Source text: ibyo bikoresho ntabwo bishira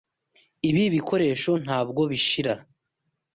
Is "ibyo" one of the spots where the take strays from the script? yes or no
yes